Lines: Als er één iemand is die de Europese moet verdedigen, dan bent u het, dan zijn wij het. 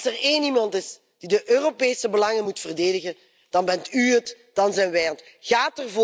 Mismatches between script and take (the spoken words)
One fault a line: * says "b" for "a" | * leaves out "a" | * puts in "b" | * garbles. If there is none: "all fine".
* puts in "belangen"